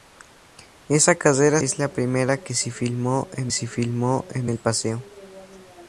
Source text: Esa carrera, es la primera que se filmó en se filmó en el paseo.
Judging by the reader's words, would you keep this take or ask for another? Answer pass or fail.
pass